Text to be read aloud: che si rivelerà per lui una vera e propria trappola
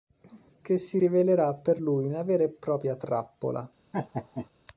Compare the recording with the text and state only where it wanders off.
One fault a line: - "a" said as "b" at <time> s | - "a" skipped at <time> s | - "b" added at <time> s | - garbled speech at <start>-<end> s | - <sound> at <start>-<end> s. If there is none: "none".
- laugh at 3.9-4.5 s